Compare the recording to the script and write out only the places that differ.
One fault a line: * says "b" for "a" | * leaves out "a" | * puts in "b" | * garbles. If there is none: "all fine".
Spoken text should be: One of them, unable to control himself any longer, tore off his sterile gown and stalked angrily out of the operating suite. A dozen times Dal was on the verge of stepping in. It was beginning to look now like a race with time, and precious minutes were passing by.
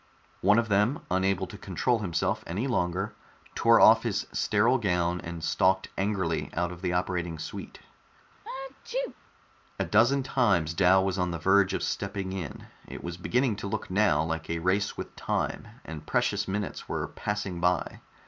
all fine